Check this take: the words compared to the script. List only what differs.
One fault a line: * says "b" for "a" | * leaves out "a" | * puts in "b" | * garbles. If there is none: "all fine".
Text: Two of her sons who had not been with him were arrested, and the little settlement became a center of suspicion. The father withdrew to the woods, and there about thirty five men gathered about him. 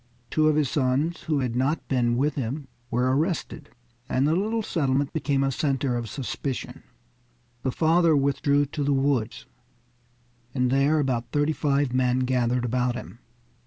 * says "his" for "her"